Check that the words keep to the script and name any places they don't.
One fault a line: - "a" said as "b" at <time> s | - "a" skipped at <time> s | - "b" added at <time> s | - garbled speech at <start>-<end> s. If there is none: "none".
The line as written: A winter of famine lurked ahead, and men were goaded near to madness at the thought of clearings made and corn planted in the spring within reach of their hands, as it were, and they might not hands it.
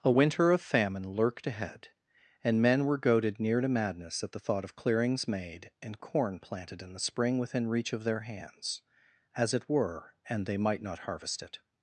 - "hands" said as "harvest" at 11.0 s